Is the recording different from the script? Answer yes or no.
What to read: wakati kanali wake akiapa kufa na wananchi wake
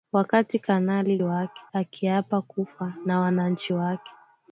no